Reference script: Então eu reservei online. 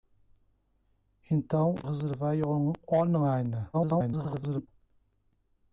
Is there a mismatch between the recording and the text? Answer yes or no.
yes